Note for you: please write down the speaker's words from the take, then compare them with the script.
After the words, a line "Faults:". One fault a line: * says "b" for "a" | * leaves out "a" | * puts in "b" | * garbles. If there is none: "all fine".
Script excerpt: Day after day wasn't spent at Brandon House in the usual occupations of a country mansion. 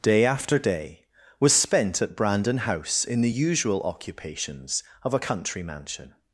Day after day was spent at Brandon House in the usual occupations of a country mansion.
Faults:
* says "was" for "wasn't"